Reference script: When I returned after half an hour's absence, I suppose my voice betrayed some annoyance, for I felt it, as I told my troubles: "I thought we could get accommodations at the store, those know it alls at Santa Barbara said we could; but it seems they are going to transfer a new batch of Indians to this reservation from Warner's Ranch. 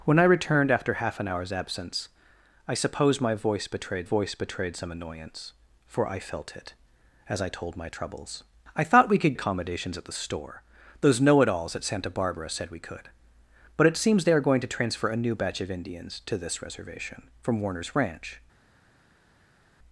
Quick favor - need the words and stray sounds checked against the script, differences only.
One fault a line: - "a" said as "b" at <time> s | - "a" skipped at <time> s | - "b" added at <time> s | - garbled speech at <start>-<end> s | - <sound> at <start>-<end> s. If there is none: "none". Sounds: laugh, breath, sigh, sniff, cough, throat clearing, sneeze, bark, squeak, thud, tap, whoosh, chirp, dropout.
- "voice betrayed" added at 4.0 s
- "get" skipped at 9.3 s